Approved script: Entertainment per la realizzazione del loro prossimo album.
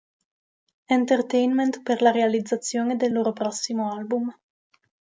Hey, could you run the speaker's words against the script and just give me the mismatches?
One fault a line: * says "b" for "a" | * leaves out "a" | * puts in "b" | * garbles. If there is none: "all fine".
all fine